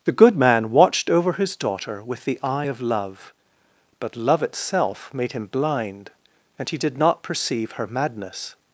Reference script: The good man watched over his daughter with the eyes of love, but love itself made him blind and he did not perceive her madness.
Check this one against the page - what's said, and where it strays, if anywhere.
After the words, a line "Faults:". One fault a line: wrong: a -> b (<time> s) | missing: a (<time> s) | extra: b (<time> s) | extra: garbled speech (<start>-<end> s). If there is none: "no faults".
The good man watched over his daughter with the eye of love, but love itself made him blind and he did not perceive her madness.
Faults:
wrong: eyes -> eye (2.4 s)